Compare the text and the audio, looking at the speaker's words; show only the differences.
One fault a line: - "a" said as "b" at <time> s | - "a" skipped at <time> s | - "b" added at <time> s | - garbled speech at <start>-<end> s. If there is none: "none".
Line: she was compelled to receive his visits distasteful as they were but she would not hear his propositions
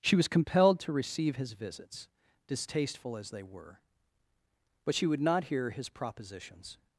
none